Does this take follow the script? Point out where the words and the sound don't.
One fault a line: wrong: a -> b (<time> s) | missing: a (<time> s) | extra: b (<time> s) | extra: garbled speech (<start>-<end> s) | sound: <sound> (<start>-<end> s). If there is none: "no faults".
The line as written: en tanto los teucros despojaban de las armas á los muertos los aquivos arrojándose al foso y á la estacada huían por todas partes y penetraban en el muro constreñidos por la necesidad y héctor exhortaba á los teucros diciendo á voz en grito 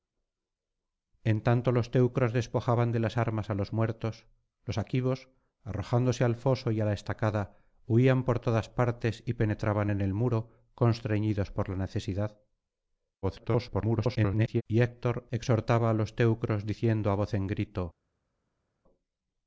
extra: garbled speech (13.2-14.6 s)